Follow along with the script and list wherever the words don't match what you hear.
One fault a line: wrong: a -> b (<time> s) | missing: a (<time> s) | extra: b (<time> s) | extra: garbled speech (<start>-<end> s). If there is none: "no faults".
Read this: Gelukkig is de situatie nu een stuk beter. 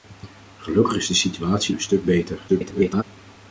missing: nu (1.8 s)
extra: garbled speech (2.5-3.0 s)